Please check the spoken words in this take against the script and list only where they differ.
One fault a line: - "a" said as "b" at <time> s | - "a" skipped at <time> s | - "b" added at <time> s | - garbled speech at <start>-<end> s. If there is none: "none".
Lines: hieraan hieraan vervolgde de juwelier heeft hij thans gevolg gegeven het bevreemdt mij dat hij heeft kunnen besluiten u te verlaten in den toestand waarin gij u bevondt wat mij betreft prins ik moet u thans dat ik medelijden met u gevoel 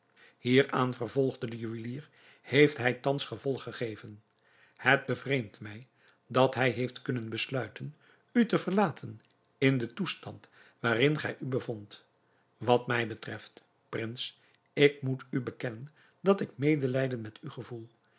- "hieraan" skipped at 0.9 s
- "thans" said as "bekennen" at 15.4 s